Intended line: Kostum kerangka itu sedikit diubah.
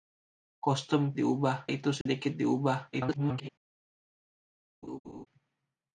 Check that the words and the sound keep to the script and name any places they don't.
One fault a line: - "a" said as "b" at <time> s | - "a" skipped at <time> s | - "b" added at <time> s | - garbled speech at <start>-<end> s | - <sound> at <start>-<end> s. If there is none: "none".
- "kerangka" said as "diubah" at 1.2 s
- dropout at 2.0-2.1 s
- garbled speech at 2.9-3.5 s
- laugh at 4.8-5.3 s